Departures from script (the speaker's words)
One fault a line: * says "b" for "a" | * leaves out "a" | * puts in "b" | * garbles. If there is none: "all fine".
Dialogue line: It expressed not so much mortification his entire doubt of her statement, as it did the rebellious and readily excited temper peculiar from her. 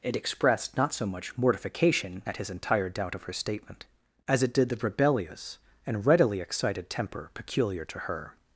* puts in "at"
* says "to" for "from"